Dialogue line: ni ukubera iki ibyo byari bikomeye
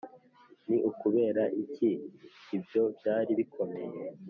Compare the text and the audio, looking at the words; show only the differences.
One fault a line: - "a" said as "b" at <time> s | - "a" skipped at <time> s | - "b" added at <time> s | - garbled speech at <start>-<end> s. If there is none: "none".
none